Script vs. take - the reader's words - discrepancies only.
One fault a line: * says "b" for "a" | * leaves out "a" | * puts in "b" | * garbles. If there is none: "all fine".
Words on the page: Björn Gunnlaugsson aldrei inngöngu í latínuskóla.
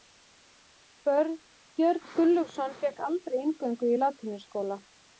* puts in "fékk"